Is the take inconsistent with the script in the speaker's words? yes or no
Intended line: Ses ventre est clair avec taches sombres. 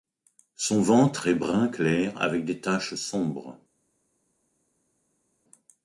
yes